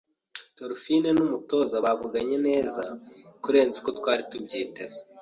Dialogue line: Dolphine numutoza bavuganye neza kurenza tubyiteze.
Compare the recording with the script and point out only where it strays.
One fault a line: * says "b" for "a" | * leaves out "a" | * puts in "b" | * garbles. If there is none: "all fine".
* puts in "uko twari"